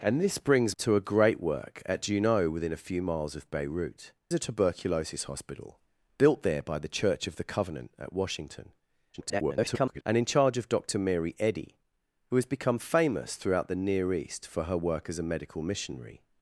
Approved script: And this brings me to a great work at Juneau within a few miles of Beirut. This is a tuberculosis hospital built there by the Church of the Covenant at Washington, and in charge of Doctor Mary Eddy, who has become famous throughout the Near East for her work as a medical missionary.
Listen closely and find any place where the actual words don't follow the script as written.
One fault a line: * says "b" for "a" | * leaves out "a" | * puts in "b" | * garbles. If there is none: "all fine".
* leaves out "me"
* leaves out "This is"
* garbles